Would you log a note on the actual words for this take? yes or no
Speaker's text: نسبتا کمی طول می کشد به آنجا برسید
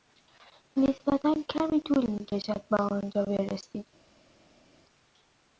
no